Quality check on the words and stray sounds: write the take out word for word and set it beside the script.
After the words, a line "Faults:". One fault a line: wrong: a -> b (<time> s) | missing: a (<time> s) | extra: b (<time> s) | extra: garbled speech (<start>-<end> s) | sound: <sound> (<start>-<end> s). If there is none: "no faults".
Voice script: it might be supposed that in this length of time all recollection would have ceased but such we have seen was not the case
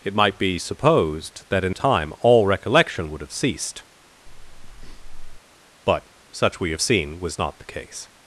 it might be supposed that in time all recollection would have ceased but such we have seen was not the case
Faults:
missing: this length of (1.8 s)
sound: breath (4.3-5.4 s)